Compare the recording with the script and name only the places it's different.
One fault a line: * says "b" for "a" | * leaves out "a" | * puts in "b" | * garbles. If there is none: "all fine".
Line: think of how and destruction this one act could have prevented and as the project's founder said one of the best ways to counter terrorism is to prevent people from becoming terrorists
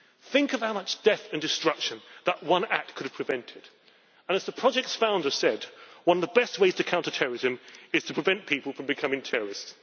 * puts in "much death"
* says "that" for "this"